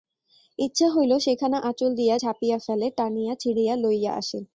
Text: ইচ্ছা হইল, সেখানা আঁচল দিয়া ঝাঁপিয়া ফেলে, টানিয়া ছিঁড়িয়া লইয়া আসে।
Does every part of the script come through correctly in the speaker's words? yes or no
yes